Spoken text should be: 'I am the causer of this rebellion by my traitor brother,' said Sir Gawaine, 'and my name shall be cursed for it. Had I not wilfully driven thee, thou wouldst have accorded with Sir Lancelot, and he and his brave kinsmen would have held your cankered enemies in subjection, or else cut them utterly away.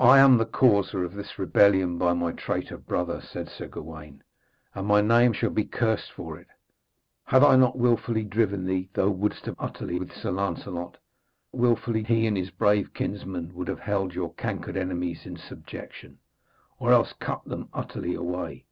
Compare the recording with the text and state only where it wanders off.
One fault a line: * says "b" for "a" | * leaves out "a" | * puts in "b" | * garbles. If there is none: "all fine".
* says "utterly" for "accorded"
* says "wilfully" for "and"